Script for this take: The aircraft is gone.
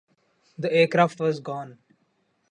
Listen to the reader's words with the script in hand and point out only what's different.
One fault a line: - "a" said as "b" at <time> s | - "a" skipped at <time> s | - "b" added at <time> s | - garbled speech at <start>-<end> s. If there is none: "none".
- "is" said as "was" at 1.2 s